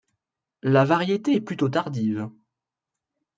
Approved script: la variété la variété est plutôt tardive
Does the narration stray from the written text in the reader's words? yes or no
yes